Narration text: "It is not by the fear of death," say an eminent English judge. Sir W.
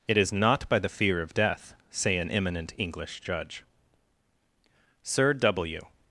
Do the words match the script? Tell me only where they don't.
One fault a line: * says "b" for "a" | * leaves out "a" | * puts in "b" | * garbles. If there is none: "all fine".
all fine